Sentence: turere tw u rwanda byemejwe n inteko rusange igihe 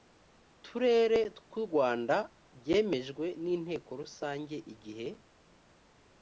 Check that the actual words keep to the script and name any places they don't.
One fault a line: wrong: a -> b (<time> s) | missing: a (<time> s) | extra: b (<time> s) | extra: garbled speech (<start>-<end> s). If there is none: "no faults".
no faults